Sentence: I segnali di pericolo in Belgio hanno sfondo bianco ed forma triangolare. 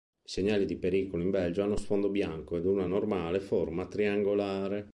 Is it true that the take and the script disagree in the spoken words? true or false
true